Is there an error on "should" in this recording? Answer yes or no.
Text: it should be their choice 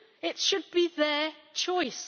no